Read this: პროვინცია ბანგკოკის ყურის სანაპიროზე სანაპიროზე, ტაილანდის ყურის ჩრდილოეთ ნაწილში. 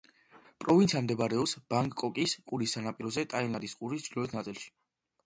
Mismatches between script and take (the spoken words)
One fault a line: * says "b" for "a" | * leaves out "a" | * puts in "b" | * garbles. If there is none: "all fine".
* puts in "მდებარეობს"
* leaves out "სანაპიროზე"